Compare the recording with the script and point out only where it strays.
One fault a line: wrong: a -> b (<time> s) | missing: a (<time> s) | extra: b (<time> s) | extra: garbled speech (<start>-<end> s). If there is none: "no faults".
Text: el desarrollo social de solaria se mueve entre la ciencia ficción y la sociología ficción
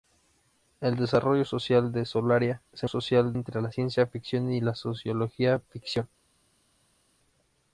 wrong: mueve -> social (2.9 s)